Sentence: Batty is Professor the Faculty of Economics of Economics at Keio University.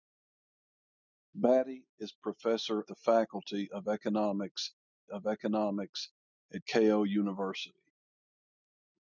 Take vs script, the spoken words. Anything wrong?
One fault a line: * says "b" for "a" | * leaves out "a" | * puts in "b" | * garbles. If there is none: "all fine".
all fine